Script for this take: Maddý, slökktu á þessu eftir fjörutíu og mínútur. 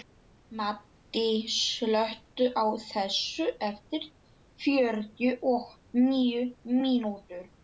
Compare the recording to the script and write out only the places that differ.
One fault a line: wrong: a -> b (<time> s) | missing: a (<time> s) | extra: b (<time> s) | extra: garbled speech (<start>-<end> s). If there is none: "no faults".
extra: níu (6.1 s)